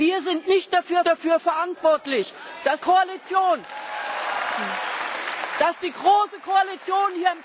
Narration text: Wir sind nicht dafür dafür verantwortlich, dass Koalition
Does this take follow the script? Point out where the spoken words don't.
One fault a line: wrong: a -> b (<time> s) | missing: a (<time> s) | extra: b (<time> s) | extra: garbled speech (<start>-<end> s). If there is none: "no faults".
no faults